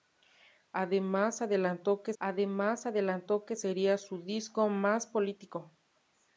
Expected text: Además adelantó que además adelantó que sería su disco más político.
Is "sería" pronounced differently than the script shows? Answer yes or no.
no